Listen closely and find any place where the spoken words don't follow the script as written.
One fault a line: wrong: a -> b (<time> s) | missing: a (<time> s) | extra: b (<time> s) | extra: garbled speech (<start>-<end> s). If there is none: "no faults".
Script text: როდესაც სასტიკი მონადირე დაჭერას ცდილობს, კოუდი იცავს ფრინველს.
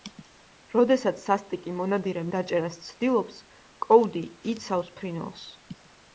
no faults